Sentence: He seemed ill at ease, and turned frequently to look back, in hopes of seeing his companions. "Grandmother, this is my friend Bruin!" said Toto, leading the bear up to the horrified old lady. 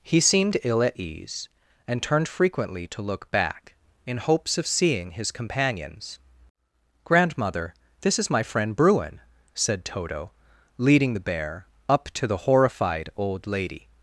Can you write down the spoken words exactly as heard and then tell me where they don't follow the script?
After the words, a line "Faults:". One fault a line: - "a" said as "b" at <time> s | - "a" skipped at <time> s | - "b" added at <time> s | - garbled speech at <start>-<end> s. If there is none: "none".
He seemed ill at ease, and turned frequently to look back, in hopes of seeing his companions. "Grandmother, this is my friend Bruin!" said Toto, leading the bear up to the horrified old lady.
Faults:
none